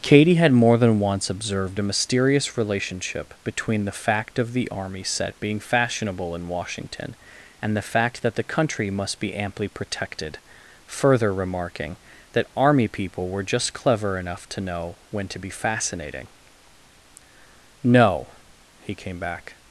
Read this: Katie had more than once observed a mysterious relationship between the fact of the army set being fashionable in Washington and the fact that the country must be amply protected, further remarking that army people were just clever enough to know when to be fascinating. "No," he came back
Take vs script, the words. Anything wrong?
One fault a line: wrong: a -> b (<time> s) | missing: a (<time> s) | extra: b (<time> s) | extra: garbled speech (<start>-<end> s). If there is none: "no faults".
no faults